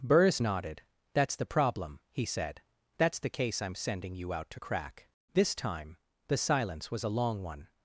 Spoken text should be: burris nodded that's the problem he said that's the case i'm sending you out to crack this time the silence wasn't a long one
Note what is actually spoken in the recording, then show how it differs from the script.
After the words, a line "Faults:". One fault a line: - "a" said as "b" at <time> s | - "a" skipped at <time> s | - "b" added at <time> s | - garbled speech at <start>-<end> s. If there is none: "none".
burris nodded that's the problem he said that's the case i'm sending you out to crack this time the silence was a long one
Faults:
- "wasn't" said as "was" at 6.9 s